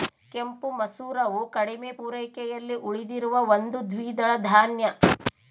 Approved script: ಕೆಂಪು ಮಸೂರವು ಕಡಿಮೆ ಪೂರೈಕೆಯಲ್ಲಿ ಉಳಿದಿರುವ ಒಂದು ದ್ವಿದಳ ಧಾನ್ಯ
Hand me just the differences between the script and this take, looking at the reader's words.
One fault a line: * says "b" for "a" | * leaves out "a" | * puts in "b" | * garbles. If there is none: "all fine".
all fine